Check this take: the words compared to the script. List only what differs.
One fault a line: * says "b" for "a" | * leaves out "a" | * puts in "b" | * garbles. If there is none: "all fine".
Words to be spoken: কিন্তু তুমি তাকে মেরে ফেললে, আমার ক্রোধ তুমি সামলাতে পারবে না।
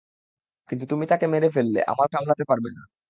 * leaves out "ক্রোধ তুমি"